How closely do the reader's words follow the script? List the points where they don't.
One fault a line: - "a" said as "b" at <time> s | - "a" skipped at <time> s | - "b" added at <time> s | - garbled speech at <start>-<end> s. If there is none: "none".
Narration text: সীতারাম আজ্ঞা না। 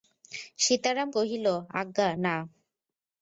- "কহিল" added at 1.2 s